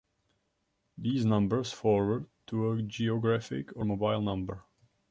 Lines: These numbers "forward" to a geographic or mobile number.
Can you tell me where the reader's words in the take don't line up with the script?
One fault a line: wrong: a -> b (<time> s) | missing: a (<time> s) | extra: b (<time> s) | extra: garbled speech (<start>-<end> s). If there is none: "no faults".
no faults